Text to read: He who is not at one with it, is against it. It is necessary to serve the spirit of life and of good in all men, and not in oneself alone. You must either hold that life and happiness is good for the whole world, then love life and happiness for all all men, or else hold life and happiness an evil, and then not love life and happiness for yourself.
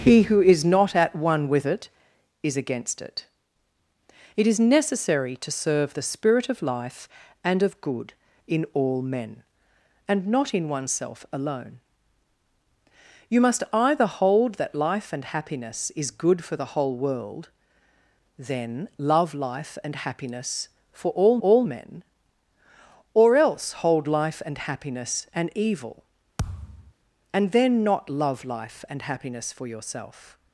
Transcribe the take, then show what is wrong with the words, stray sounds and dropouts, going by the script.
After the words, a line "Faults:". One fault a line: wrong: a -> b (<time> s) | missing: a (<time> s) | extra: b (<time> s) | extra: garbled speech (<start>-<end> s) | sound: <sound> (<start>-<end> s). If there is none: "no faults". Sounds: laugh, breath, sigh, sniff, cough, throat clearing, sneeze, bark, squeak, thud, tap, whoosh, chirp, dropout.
He who is not at one with it, is against it. It is necessary to serve the spirit of life and of good in all men, and not in oneself alone. You must either hold that life and happiness is good for the whole world, then love life and happiness for all all men, or else hold life and happiness an evil, and then not love life and happiness for yourself.
Faults:
sound: thud (26.4-26.9 s)